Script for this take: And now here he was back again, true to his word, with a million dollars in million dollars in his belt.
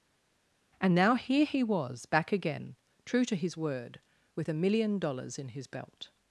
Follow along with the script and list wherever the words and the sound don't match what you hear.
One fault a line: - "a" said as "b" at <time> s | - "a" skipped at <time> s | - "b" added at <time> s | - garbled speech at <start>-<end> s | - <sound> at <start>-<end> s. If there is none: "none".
- "million dollars in" skipped at 5.5 s